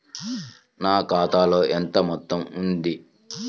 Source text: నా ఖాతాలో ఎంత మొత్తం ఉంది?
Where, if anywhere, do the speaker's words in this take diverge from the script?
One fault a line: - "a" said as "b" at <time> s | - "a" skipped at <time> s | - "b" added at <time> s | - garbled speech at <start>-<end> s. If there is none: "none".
none